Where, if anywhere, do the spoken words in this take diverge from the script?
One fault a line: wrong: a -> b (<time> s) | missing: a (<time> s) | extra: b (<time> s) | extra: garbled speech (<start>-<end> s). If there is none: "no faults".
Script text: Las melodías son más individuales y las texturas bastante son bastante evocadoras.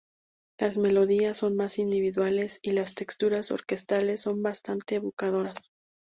wrong: bastante -> orquestales (3.5 s)